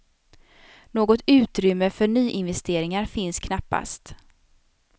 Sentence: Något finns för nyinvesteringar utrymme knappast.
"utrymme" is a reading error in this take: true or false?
true